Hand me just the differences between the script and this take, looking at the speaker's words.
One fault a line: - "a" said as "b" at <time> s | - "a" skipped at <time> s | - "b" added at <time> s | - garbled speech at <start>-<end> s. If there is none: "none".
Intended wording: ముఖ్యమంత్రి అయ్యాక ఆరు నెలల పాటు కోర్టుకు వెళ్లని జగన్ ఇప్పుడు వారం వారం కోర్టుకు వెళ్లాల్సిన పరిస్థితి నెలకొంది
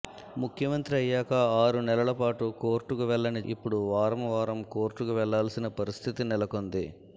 - "జగన్" skipped at 3.4 s